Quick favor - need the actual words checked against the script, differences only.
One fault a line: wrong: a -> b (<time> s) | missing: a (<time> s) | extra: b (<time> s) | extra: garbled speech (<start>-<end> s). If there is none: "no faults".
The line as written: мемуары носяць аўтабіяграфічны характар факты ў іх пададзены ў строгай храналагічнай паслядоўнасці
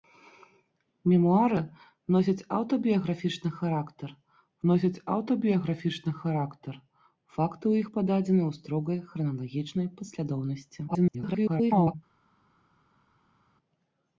extra: носяць аўтабіяграфічны характар (4.7 s)
extra: garbled speech (10.9-12.0 s)